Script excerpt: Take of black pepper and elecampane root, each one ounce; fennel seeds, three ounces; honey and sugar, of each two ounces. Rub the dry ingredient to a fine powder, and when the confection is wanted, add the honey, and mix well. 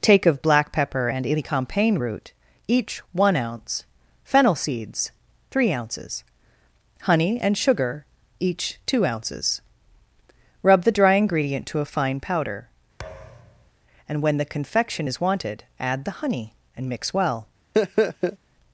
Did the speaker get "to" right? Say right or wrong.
right